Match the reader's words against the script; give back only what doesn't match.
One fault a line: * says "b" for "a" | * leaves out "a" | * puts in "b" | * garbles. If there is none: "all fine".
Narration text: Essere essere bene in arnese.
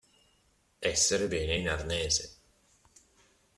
* leaves out "essere"